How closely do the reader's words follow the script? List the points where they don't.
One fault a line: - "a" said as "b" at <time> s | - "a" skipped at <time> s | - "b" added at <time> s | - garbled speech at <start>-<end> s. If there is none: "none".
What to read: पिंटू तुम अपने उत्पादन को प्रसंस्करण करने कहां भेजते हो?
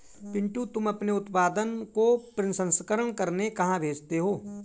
none